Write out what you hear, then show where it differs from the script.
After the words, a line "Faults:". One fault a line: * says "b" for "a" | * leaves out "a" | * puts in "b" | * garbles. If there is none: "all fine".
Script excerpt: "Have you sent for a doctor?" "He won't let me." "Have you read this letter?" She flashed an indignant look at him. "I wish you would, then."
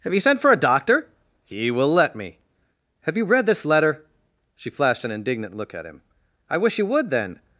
"Have you sent for a doctor?" "He will let me." "Have you read this letter?" She flashed an indignant look at him. "I wish you would, then."
Faults:
* says "will" for "won't"